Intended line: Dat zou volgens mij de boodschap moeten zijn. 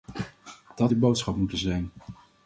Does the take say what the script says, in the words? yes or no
no